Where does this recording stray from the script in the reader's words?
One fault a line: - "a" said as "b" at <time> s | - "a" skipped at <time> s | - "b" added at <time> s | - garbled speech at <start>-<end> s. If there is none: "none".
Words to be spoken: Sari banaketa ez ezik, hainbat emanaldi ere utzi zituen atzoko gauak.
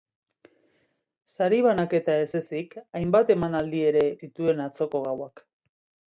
- "utzi" skipped at 4.0 s